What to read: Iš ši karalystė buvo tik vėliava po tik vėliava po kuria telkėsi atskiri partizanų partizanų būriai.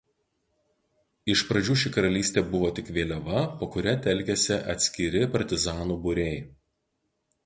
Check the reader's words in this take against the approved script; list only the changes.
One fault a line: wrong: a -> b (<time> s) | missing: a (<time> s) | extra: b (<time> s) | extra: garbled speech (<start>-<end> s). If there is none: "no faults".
extra: pradžių (1.5 s)
missing: tik vėliava po (3.7 s)
missing: partizanų (6.0 s)